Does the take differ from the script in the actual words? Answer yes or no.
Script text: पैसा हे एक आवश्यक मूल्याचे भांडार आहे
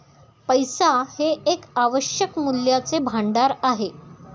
no